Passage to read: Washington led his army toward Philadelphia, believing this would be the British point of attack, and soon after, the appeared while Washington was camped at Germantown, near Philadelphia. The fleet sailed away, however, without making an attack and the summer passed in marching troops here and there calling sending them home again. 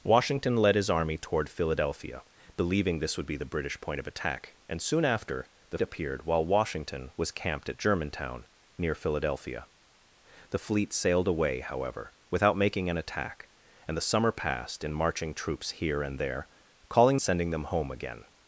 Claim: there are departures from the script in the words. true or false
false